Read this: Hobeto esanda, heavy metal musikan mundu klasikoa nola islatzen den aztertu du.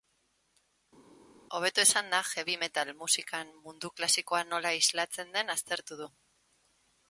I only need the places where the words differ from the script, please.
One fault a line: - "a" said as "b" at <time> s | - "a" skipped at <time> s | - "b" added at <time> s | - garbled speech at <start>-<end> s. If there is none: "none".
none